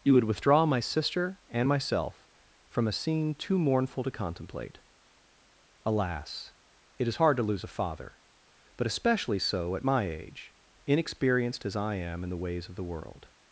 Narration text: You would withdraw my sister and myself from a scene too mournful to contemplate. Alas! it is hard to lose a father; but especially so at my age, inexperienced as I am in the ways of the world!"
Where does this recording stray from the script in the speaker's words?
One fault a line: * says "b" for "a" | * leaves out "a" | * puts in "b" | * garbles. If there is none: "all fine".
all fine